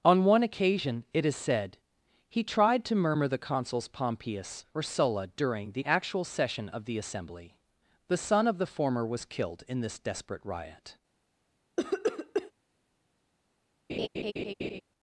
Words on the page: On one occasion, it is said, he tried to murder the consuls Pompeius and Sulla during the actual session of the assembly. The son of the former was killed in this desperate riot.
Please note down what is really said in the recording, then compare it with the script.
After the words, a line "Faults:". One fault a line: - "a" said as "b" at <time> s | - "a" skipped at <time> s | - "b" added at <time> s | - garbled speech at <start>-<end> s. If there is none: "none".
On one occasion, it is said, he tried to murmur the consuls Pompeius or Sulla during the actual session of the assembly. The son of the former was killed in this desperate riot.
Faults:
- "murder" said as "murmur" at 3.0 s
- "and" said as "or" at 4.7 s